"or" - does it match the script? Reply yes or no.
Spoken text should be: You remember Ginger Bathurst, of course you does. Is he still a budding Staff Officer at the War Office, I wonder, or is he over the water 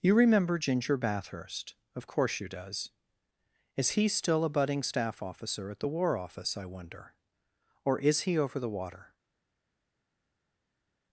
yes